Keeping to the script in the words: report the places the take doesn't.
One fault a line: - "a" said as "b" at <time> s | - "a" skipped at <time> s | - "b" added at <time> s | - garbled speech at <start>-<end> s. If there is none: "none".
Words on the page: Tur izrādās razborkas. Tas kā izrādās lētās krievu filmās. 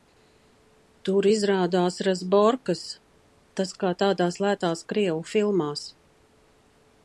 - "izrādās" said as "tādās" at 4.0 s